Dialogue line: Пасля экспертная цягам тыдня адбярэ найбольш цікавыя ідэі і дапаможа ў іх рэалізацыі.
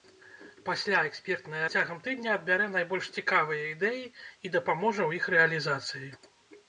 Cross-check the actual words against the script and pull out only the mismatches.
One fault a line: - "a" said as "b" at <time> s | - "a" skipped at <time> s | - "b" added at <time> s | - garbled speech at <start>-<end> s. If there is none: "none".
none